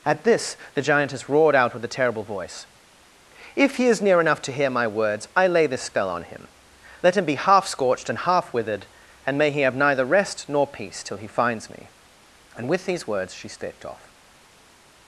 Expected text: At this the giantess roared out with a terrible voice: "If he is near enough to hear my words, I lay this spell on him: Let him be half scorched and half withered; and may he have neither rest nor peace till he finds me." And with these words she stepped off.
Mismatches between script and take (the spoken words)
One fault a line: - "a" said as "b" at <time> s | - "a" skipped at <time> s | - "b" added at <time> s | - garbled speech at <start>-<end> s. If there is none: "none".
none